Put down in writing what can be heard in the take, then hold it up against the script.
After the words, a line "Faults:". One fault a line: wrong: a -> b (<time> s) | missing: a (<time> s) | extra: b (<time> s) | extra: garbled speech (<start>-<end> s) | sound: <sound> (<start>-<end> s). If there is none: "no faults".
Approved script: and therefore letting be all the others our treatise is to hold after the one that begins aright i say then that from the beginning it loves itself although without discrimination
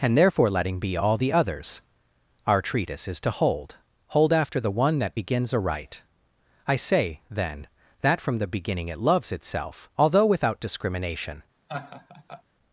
and therefore letting be all the others our treatise is to hold hold after the one that begins aright i say then that from the beginning it loves itself although without discrimination
Faults:
extra: hold (4.1 s)
sound: laugh (11.7-12.4 s)